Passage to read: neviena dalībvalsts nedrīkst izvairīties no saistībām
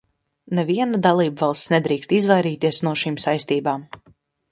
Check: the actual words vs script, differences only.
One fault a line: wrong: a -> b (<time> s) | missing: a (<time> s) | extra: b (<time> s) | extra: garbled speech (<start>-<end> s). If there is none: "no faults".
extra: šīm (3.0 s)